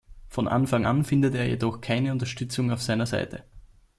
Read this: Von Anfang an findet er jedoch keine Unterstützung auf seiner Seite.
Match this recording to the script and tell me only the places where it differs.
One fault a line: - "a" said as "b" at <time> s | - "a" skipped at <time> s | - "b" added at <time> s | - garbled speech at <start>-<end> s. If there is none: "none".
none